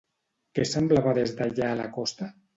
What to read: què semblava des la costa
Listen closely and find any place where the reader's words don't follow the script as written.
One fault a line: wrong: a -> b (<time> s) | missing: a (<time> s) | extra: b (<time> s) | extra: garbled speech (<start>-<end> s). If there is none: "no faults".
extra: d'allà (1.4 s)